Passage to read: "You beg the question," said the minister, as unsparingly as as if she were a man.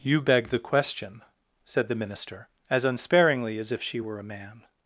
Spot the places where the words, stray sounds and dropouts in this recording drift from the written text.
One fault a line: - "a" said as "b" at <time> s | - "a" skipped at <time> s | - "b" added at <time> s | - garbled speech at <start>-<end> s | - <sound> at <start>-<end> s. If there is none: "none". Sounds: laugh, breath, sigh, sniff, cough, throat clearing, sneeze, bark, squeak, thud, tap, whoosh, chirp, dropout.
- "as" skipped at 3.7 s